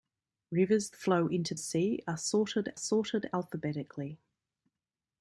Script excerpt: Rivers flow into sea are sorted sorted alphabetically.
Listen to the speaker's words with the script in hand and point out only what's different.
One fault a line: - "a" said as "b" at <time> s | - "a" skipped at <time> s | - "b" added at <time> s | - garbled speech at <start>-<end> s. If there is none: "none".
none